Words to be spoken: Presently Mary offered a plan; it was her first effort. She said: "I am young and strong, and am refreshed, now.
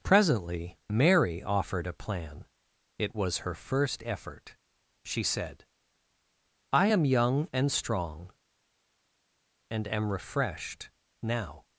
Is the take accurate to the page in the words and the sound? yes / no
yes